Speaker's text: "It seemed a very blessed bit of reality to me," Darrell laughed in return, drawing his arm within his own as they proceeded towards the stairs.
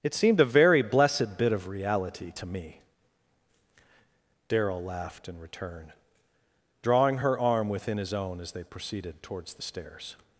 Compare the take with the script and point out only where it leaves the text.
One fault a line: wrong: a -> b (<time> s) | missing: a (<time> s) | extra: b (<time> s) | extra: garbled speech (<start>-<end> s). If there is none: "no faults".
wrong: his -> her (7.2 s)